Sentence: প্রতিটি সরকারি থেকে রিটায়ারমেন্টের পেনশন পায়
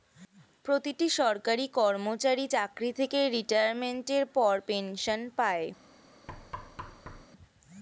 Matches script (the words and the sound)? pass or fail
fail